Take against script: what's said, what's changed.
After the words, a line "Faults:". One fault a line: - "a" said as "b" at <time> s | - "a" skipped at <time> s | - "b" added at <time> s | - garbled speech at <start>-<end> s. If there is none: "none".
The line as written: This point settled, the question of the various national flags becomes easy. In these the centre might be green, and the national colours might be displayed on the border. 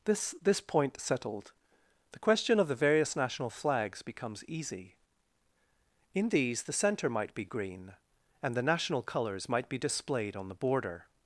This this point settled, the question of the various national flags becomes easy. In these the centre might be green, and the national colours might be displayed on the border.
Faults:
- "this" added at 0.4 s